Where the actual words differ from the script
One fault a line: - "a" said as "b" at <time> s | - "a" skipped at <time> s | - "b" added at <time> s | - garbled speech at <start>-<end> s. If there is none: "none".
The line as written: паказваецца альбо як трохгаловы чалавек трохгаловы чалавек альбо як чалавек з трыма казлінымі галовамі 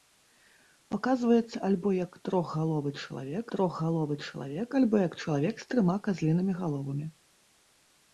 none